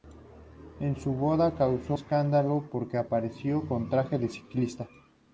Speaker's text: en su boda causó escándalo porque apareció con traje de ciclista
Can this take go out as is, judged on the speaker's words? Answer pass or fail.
pass